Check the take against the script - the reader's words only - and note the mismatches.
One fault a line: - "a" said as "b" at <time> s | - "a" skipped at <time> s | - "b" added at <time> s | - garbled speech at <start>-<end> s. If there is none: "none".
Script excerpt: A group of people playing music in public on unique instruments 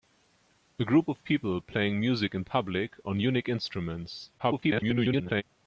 - garbled speech at 4.4-5.4 s